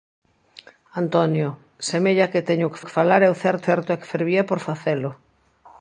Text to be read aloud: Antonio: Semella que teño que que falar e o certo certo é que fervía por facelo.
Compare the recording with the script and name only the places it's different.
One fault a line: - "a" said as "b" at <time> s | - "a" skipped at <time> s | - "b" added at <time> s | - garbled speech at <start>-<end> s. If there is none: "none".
none